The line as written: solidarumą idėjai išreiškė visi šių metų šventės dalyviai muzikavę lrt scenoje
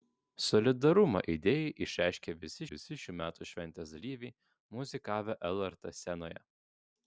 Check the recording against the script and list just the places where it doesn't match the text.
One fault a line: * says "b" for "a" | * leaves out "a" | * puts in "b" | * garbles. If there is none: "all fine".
* puts in "visi"